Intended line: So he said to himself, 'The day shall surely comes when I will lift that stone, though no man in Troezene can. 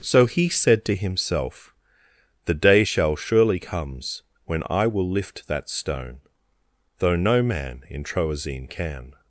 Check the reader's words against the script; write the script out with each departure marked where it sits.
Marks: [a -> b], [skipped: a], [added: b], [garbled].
So he said to himself, 'The day shall surely comes when I will lift that stone, though no man in Troezene can.